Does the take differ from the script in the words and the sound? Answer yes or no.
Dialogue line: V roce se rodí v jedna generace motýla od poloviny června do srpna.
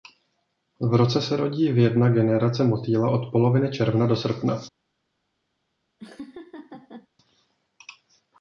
yes